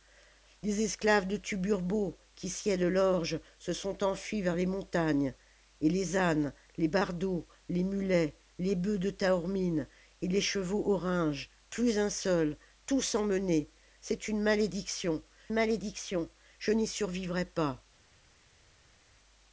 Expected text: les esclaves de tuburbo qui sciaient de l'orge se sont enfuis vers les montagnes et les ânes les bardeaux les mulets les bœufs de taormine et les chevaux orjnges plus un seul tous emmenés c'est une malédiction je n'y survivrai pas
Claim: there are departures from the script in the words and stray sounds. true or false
true